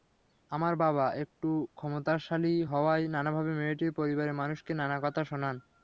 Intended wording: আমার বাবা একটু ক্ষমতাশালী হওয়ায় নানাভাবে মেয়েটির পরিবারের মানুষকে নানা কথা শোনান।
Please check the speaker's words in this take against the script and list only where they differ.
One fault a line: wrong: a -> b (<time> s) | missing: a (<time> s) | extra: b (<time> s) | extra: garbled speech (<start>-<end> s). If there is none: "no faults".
no faults